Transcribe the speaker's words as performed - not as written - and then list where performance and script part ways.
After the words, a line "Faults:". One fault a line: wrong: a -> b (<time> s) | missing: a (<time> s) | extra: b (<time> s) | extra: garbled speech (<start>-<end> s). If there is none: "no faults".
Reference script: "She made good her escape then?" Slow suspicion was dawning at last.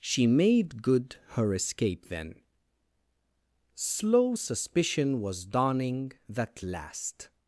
"She made good her escape then?" Slow suspicion was dawning that last.
Faults:
wrong: at -> that (6.3 s)